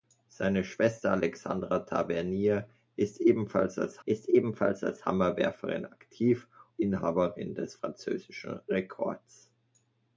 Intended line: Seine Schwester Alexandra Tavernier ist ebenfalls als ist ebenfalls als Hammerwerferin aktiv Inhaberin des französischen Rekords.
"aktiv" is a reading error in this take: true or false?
false